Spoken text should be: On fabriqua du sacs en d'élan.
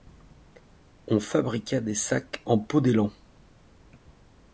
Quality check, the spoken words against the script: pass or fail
fail